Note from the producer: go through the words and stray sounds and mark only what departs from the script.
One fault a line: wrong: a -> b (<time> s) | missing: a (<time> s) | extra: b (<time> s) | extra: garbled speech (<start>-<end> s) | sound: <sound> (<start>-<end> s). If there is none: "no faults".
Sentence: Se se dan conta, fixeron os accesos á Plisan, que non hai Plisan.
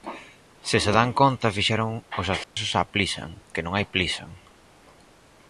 sound: dropout (2.4-2.6 s)